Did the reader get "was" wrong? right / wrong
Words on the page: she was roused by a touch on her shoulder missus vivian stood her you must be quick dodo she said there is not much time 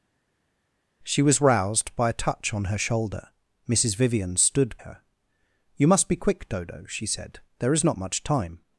right